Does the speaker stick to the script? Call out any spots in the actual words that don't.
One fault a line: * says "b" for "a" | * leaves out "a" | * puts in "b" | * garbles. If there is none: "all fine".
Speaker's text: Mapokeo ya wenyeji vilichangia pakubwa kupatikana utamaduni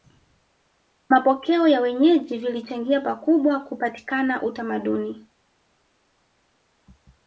all fine